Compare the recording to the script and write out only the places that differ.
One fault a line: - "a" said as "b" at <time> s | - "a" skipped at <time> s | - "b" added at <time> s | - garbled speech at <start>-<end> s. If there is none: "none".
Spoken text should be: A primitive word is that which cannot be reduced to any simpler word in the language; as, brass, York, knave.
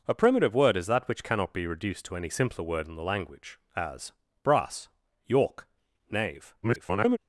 - garbled speech at 6.6-7.2 s